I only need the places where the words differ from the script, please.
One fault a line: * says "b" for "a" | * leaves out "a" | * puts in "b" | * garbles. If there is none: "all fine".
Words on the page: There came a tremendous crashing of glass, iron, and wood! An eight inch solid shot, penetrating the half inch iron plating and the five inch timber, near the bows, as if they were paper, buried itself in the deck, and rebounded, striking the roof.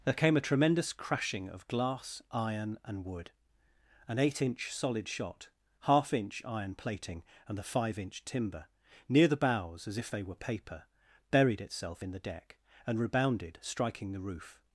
* leaves out "penetrating the"